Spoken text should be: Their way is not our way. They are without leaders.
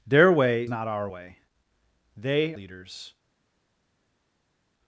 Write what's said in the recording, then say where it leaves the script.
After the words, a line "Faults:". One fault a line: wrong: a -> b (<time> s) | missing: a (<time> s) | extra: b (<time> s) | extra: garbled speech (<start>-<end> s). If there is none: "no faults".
Their way not our way. They leaders.
Faults:
missing: is (0.7 s)
missing: are without (2.5 s)